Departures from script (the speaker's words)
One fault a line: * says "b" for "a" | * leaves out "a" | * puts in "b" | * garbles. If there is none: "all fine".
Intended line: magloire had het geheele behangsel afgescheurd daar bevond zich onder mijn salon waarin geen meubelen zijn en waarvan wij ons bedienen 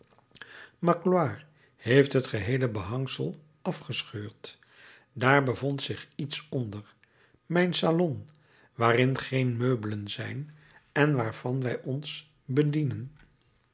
* says "heeft" for "had"
* puts in "iets"